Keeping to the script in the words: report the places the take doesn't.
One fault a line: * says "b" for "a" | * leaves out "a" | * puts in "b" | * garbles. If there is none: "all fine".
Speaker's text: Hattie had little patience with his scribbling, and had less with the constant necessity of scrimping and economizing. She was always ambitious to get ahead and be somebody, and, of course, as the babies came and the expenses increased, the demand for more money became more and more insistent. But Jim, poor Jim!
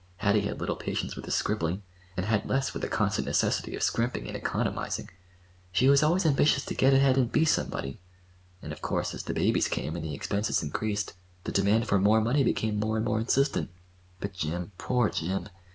all fine